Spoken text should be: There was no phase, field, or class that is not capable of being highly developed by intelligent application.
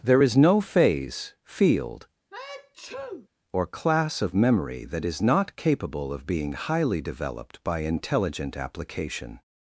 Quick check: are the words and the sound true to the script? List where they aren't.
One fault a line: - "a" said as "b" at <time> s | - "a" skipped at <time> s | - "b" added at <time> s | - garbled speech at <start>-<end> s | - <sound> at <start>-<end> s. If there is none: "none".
- "was" said as "is" at 0.2 s
- sneeze at 2.3-3.3 s
- "of memory" added at 4.2 s